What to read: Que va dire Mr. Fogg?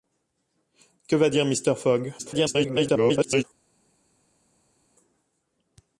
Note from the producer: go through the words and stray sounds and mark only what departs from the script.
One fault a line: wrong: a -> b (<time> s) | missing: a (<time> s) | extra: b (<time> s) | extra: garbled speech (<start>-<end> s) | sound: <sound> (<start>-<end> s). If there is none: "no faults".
extra: garbled speech (2.2-3.4 s)